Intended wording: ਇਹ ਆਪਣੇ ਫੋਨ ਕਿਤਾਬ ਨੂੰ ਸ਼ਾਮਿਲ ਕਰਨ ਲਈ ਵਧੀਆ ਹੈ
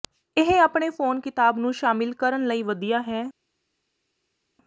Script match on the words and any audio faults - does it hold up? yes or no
yes